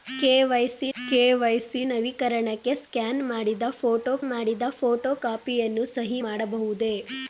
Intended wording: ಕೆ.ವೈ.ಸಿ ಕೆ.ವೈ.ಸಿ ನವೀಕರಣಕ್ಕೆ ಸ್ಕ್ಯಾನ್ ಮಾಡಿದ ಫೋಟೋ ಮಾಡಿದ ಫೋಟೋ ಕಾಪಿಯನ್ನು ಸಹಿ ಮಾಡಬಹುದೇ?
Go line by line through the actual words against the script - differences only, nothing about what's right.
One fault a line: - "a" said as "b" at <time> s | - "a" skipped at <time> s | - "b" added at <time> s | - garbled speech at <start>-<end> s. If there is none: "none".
none